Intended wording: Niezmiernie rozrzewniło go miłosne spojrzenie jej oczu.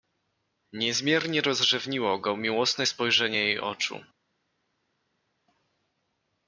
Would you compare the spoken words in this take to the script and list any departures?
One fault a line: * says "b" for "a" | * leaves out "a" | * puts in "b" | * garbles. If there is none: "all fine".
all fine